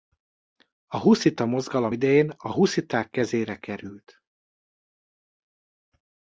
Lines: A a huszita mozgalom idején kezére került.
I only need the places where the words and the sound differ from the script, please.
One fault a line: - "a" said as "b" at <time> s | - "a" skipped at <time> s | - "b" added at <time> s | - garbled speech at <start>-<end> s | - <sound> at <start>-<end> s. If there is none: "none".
- "a" skipped at 1.0 s
- "a husziták" added at 2.3 s